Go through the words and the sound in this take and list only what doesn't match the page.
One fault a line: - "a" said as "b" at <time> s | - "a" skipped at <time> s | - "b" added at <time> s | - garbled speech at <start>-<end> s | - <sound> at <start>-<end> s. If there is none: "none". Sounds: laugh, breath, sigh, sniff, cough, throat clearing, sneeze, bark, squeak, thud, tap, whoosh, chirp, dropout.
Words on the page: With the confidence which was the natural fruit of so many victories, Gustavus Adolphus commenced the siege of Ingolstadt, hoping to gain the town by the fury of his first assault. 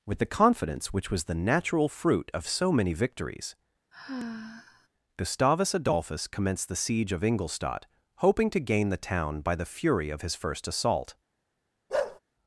- sigh at 3.9-4.9 s
- bark at 11.9-12.2 s